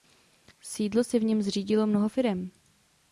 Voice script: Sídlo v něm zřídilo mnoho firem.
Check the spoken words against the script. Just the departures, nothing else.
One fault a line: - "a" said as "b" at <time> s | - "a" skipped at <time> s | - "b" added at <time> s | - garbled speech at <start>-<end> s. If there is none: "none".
- "si" added at 1.0 s